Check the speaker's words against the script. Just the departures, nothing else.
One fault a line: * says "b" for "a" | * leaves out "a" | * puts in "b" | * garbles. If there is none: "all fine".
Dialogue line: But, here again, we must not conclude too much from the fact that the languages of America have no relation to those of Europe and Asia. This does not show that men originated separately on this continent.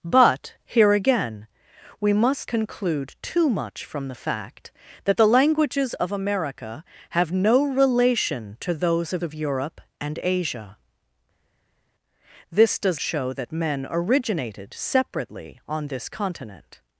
* leaves out "not"
* puts in "of"
* leaves out "not"